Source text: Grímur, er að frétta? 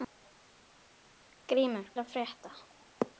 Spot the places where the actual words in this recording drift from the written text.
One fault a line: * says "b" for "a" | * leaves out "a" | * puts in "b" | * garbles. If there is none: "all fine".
all fine